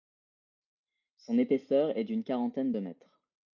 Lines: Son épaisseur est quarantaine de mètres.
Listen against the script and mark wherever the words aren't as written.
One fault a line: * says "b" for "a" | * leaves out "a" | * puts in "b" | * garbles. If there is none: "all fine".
* puts in "d'une"